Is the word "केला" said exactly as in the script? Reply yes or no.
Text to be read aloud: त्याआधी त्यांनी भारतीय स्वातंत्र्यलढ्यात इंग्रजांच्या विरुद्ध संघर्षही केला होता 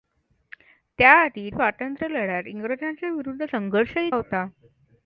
no